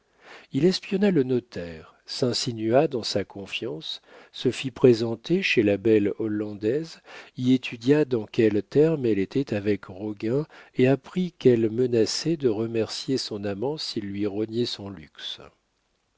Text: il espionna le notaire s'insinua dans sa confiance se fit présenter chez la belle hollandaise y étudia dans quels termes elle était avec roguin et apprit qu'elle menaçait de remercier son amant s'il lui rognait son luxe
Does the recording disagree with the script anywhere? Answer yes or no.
no